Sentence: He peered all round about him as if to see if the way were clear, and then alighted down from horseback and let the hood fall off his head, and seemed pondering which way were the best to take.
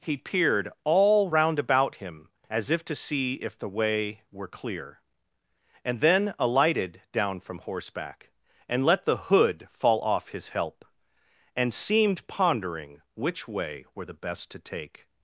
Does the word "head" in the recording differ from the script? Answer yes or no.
yes